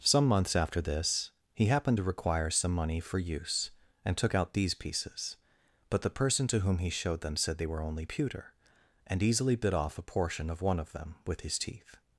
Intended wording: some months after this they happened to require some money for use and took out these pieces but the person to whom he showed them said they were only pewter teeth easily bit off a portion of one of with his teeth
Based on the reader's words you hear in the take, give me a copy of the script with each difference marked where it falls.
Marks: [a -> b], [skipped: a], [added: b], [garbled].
some months after this [they -> he] happened to require some money for use and took out these pieces but the person to whom he showed them said they were only pewter [teeth -> and] easily bit off a portion of one of [added: them] with his teeth